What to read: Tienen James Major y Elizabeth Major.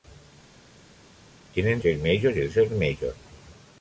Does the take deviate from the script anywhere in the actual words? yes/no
no